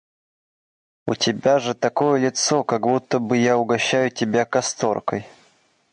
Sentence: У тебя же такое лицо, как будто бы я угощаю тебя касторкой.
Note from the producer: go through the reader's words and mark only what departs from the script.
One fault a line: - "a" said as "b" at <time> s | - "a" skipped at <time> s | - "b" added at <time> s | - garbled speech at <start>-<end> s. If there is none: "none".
none